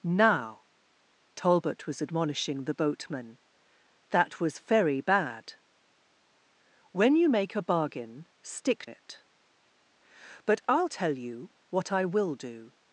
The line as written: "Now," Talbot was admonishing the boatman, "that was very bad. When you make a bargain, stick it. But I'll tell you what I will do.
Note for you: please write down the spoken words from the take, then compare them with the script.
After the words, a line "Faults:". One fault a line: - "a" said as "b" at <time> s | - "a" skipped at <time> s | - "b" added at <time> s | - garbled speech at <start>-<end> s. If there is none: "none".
"Now," Talbot was admonishing the boatman, "that was very bad. When you make a bargain, stick it. But I'll tell you what I will do.
Faults:
none